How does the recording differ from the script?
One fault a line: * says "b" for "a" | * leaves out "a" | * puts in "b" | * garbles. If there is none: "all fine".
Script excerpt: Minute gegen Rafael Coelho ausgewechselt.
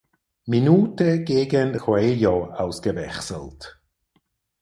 * leaves out "Rafael"